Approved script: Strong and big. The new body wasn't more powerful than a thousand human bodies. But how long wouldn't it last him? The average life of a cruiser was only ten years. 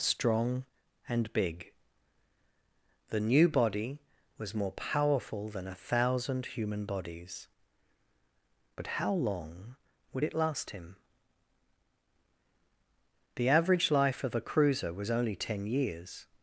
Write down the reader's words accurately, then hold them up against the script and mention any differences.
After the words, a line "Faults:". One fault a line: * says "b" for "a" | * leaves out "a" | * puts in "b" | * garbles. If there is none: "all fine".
Strong and big. The new body was more powerful than a thousand human bodies. But how long would it last him? The average life of a cruiser was only ten years.
Faults:
* says "was" for "wasn't"
* says "would" for "wouldn't"